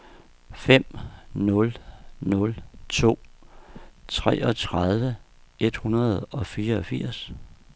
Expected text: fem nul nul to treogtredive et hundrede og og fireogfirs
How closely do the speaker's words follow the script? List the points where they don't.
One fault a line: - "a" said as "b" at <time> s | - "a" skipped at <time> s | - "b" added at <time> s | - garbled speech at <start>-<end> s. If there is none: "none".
- "og" skipped at 6.5 s